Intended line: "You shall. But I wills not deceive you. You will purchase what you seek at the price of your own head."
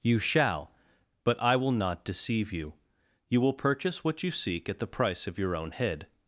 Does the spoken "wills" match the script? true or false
false